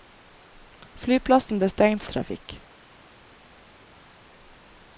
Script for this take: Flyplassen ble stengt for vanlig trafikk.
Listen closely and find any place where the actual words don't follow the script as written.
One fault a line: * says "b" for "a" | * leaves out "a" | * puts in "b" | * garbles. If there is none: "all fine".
* leaves out "for vanlig"